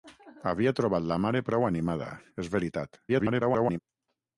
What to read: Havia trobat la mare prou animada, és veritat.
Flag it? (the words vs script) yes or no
yes